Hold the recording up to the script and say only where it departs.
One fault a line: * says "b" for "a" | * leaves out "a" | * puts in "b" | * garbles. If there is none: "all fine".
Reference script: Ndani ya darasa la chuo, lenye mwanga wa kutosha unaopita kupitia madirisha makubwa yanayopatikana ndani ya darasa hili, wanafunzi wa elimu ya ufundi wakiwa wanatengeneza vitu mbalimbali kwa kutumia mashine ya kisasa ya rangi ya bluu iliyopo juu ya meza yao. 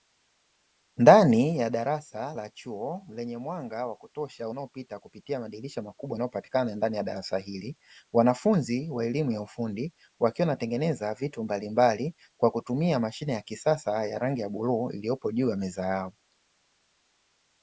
all fine